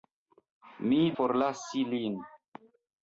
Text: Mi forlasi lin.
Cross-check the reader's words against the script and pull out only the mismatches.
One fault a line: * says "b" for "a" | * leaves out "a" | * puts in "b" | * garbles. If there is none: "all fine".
all fine